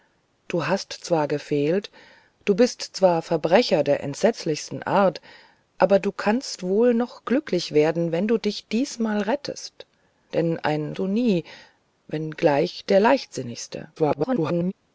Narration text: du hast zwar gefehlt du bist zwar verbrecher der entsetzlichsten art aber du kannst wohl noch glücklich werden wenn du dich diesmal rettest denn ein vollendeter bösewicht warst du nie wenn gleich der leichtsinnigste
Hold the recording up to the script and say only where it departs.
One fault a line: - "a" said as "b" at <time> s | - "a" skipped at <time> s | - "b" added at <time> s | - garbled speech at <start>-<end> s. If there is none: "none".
- "vollendeter bösewicht warst" skipped at 10.9 s
- garbled speech at 14.0-14.7 s